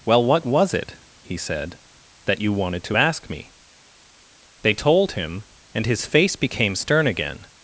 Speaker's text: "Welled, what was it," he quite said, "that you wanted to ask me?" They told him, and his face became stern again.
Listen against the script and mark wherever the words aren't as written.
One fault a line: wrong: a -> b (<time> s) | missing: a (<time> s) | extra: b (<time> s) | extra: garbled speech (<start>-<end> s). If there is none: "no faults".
wrong: Welled -> Well (0.0 s)
missing: quite (1.4 s)